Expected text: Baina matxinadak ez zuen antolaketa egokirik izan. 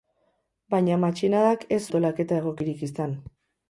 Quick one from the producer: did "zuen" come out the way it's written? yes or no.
no